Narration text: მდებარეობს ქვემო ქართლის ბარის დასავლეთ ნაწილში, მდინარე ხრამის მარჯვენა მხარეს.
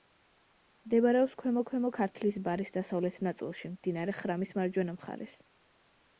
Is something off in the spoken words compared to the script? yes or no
yes